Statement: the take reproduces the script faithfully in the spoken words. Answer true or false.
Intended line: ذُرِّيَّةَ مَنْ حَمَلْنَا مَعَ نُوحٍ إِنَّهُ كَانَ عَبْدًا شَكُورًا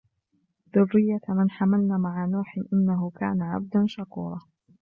true